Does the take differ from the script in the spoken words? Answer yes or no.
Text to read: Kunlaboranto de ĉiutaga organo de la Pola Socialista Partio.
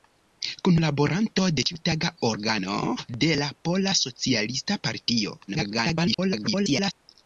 yes